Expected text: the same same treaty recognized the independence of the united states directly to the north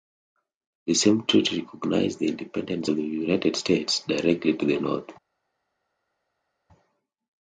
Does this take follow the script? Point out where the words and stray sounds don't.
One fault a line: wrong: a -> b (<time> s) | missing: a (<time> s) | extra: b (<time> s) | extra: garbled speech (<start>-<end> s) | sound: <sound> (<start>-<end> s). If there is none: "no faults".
missing: same (1.3 s)